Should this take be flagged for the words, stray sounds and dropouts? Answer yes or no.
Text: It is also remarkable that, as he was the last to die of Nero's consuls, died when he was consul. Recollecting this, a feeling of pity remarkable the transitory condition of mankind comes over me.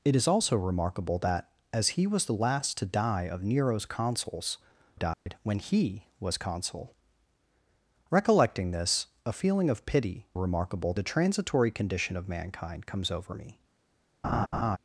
yes